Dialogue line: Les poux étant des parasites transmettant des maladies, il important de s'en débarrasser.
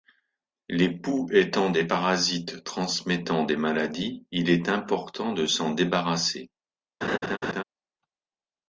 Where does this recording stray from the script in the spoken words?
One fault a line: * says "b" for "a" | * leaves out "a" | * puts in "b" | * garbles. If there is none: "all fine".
* puts in "est"